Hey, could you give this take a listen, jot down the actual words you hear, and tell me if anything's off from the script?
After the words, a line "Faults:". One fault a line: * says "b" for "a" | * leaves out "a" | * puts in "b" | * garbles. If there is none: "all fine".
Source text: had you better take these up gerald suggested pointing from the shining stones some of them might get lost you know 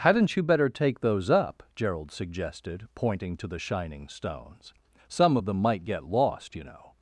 hadn't you better take those up gerald suggested pointing to the shining stones some of them might get lost you know
Faults:
* says "hadn't" for "had"
* says "those" for "these"
* says "to" for "from"